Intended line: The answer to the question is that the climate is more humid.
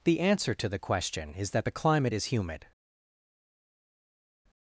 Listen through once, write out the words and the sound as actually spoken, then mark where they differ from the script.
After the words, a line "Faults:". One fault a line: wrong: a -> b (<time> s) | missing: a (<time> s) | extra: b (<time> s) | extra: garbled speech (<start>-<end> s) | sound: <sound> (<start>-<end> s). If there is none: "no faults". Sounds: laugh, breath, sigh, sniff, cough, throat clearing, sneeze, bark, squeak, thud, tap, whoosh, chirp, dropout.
The answer to the question is that the climate is humid.
Faults:
missing: more (2.3 s)